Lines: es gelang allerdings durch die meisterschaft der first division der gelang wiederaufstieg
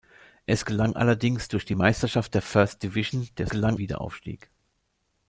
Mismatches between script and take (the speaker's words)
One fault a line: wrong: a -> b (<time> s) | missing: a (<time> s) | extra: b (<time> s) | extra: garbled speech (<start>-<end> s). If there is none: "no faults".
no faults